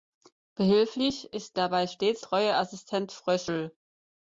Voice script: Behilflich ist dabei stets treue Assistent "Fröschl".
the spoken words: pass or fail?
pass